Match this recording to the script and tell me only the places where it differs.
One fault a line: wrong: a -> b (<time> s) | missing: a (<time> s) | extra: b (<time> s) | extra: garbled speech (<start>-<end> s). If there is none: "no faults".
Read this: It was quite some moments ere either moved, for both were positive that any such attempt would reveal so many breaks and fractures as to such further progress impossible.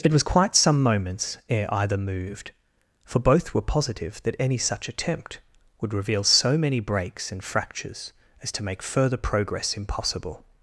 wrong: such -> make (8.6 s)